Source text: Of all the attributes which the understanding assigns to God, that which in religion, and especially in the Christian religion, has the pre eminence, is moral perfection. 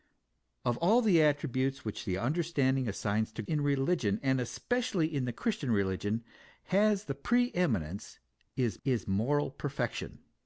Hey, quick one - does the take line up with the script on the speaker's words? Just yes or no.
no